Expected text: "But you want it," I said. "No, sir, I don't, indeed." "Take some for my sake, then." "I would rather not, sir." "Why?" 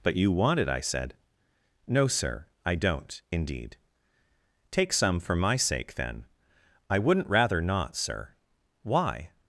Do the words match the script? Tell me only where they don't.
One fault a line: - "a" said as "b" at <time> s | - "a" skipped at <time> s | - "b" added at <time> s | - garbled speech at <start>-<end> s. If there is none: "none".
- "would" said as "wouldn't" at 7.0 s